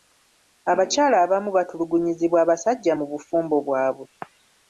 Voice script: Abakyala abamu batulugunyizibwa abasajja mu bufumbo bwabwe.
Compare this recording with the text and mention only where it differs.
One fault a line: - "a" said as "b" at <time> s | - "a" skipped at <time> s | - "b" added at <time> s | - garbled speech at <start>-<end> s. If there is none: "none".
none